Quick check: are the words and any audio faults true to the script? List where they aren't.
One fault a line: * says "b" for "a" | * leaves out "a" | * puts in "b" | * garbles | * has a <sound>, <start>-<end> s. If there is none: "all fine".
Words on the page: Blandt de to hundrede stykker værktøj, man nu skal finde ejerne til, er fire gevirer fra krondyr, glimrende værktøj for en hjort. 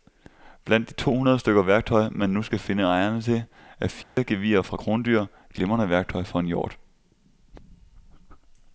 * has a dropout, 4.0-4.2 s